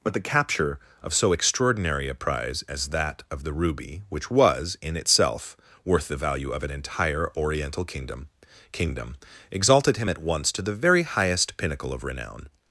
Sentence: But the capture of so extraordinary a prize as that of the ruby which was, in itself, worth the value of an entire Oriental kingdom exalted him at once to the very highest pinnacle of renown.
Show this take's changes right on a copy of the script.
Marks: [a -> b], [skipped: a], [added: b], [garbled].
But the capture of so extraordinary a prize as that of the ruby which was, in itself, worth the value of an entire Oriental kingdom [added: kingdom] exalted him at once to the very highest pinnacle of renown.